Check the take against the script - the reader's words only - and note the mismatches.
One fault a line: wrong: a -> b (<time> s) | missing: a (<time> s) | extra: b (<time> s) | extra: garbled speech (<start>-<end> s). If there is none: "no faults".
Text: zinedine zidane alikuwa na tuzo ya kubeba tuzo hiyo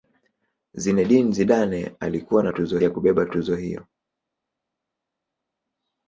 no faults